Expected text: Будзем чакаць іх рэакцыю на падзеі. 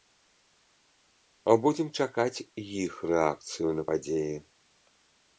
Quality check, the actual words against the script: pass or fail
pass